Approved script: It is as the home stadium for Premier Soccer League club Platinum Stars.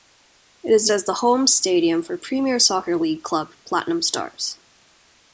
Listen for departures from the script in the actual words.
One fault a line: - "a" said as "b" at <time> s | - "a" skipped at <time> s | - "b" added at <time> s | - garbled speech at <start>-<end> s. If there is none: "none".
none